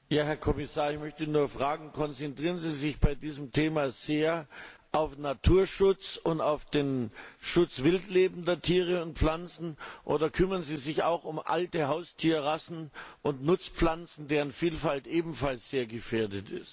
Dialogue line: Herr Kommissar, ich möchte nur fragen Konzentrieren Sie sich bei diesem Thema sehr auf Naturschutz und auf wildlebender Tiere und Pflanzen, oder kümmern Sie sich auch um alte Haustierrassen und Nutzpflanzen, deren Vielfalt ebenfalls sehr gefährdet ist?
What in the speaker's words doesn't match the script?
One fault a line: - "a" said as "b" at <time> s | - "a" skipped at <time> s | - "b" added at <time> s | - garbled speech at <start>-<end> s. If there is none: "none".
- "den Schutz" added at 6.7 s